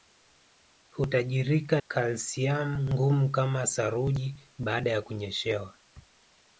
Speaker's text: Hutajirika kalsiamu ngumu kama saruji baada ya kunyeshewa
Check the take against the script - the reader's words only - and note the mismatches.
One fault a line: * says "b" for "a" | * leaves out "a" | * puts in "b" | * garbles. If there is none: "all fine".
all fine